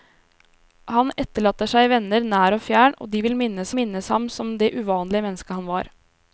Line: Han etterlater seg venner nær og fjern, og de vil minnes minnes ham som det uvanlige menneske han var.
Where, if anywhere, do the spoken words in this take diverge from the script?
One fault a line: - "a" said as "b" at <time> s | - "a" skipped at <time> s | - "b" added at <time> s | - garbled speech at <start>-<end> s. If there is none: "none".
none